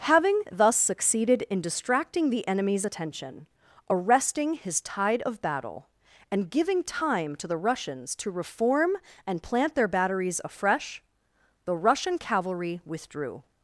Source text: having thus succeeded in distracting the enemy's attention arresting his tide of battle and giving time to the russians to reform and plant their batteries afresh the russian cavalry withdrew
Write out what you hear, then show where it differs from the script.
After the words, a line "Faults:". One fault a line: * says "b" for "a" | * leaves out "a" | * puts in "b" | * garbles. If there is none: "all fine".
having thus succeeded in distracting the enemy's attention arresting his tide of battle and giving time to the russians to reform and plant their batteries afresh the russian cavalry withdrew
Faults:
all fine